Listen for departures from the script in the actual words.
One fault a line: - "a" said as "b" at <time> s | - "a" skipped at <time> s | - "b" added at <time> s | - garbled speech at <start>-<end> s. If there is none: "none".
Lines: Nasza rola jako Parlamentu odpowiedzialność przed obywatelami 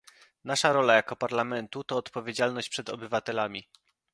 - "to" added at 1.8 s